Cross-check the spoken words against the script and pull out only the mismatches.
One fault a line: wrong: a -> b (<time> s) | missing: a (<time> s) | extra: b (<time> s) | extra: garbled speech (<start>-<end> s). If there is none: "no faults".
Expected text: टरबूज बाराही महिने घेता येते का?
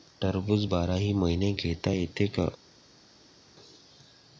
no faults